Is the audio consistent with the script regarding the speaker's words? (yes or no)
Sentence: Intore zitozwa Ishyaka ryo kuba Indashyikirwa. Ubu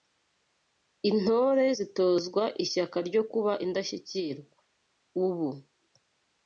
yes